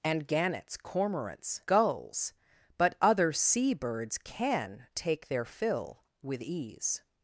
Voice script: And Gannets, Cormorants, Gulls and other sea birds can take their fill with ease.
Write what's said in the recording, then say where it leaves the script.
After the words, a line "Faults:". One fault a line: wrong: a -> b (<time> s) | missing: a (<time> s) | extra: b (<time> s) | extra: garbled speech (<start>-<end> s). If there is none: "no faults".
And Gannets, Cormorants, Gulls but other sea birds can take their fill with ease.
Faults:
wrong: and -> but (2.8 s)